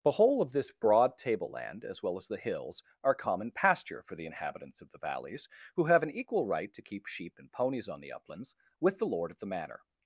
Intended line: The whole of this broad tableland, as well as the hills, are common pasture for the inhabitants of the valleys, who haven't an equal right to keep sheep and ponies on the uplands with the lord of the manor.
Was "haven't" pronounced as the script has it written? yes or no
no